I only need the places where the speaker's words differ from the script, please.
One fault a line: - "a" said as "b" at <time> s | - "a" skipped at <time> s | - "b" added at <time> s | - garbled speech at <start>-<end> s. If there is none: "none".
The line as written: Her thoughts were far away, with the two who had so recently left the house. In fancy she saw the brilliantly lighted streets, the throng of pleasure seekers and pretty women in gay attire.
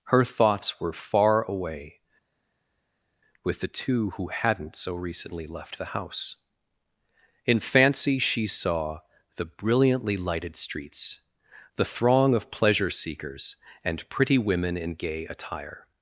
- "had" said as "hadn't" at 4.3 s